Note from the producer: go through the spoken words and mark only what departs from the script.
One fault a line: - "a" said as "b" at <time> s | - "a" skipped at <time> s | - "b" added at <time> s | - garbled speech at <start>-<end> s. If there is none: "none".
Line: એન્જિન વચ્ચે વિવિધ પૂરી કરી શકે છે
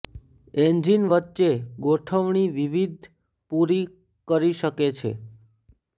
- "ગોઠવણી" added at 1.8 s